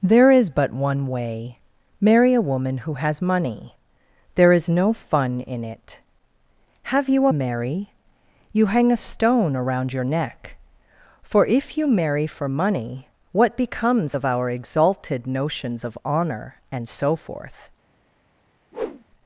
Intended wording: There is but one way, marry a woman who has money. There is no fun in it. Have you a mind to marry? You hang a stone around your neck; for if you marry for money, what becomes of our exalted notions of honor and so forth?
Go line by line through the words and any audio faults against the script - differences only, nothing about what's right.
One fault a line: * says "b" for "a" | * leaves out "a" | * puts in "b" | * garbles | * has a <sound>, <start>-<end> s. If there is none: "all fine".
* leaves out "mind to"
* has a whoosh, 18.7-19.0 s